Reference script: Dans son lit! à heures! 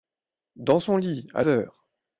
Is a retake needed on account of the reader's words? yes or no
no